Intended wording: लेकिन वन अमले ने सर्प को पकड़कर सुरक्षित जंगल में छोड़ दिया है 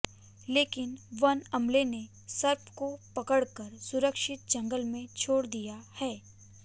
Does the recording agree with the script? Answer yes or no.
yes